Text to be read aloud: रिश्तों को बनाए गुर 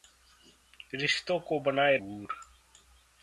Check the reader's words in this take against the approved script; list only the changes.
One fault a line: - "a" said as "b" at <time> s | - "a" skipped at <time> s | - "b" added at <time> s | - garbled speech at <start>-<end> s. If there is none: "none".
none